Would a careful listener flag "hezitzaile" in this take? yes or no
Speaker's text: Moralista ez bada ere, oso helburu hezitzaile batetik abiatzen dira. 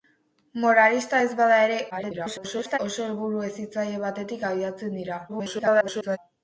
no